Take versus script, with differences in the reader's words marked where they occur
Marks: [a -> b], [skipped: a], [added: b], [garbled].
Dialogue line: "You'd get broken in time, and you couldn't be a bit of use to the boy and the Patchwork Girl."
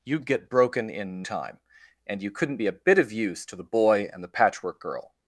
"You'd get broken in time, and you couldn't be a bit of use to the boy and the Patchwork Girl."